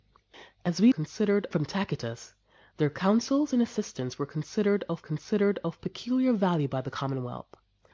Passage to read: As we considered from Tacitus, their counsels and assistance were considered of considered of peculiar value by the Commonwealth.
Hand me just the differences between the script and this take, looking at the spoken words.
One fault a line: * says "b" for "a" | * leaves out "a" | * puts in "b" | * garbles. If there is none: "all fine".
all fine